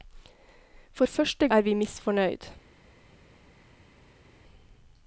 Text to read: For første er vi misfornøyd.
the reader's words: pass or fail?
pass